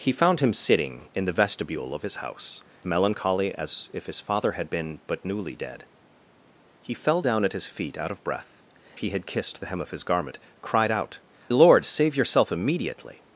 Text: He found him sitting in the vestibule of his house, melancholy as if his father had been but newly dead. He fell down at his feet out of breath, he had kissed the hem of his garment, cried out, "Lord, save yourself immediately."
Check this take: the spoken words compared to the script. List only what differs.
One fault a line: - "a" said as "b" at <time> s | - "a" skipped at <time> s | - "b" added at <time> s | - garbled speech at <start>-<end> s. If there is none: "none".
none